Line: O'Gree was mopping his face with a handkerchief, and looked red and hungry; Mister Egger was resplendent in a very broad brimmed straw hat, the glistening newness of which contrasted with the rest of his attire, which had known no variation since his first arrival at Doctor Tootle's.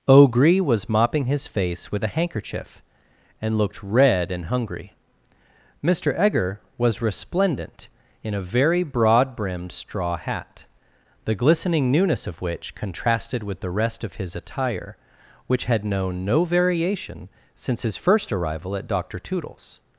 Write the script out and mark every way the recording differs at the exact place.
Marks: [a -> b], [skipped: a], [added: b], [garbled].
O'Gree was mopping his face with a handkerchief, and looked red and hungry; Mister Egger was resplendent in a very broad brimmed straw hat, the glistening newness of which contrasted with the rest of his attire, which had known no variation since his first arrival at Doctor Tootle's.